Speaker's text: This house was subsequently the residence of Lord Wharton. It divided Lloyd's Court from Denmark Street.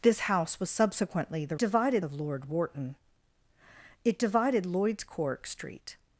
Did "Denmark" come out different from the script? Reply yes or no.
yes